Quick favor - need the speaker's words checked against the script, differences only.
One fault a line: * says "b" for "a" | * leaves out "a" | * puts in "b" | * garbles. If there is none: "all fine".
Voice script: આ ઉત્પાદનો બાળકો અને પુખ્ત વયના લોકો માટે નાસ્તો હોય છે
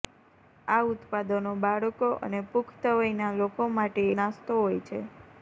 all fine